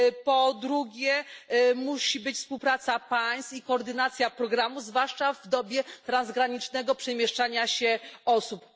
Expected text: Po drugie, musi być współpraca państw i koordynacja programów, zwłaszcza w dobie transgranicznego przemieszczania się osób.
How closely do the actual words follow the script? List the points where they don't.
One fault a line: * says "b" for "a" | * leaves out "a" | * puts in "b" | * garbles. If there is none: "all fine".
all fine